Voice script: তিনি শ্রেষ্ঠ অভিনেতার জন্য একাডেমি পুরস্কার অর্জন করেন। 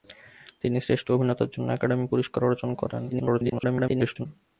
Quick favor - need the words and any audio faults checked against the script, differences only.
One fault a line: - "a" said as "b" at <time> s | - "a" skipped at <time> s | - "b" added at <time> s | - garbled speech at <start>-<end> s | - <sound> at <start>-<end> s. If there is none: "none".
- garbled speech at 3.1-4.3 s